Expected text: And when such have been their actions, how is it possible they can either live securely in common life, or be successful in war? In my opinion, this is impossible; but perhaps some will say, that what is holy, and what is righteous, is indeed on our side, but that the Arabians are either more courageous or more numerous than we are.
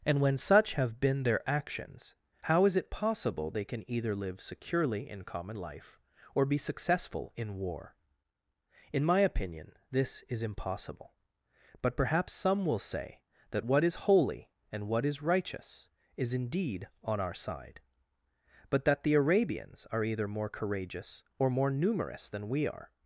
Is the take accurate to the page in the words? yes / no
yes